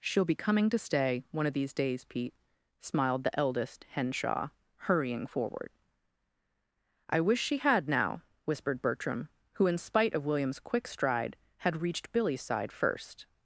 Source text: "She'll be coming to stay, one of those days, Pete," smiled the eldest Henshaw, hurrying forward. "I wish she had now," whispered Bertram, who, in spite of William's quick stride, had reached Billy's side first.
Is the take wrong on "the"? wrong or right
right